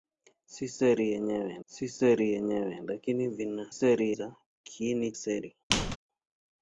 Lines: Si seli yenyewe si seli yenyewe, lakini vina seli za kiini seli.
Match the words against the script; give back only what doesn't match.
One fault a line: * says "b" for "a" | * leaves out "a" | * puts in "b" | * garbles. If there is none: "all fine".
all fine